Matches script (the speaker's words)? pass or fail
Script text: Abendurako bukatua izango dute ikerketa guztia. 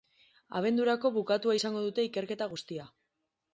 pass